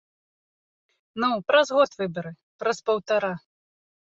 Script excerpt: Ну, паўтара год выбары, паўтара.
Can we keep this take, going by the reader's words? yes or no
no